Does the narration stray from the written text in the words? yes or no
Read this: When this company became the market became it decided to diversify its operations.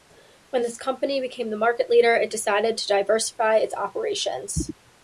yes